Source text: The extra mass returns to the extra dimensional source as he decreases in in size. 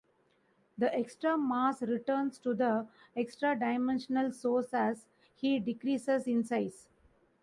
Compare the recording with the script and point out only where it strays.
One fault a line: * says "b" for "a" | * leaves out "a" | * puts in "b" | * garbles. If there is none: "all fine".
* leaves out "in"